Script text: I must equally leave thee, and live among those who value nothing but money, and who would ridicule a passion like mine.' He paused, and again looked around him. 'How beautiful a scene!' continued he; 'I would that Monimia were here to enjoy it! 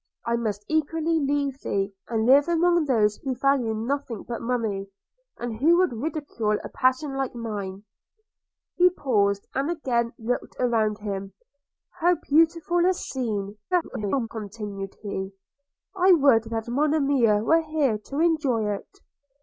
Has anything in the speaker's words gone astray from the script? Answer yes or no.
yes